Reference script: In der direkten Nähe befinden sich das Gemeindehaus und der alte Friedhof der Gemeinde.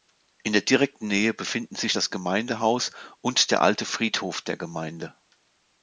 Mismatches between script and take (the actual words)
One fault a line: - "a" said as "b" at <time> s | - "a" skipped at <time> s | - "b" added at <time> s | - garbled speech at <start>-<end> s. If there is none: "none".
none